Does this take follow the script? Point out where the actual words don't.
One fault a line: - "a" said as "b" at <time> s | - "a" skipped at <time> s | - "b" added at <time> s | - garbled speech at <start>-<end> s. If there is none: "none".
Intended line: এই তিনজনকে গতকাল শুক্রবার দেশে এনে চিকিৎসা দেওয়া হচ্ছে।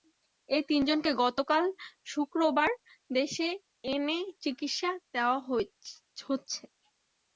none